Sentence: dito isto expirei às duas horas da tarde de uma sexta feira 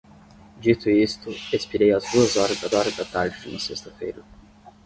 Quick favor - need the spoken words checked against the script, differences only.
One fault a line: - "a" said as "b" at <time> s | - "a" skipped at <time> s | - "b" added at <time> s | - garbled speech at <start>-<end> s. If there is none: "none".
- "horas da" added at 2.7 s